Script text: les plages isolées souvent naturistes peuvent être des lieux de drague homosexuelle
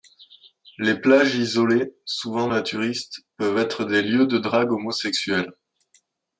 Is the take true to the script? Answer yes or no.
yes